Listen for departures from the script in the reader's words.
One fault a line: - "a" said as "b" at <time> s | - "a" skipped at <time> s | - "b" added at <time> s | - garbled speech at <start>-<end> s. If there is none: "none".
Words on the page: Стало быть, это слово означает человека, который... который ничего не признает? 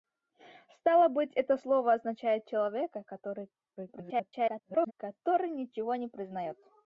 - garbled speech at 3.8-4.9 s